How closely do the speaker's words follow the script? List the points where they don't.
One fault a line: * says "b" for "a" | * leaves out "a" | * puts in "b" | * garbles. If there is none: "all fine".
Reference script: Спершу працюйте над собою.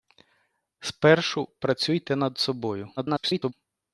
* garbles